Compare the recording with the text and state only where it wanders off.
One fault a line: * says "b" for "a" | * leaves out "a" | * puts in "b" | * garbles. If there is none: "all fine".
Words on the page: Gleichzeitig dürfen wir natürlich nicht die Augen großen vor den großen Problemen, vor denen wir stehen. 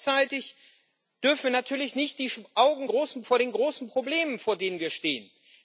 all fine